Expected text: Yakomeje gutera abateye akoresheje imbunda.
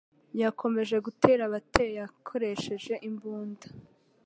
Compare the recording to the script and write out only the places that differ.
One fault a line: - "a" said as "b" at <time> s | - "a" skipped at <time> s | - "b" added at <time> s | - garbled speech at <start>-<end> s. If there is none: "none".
none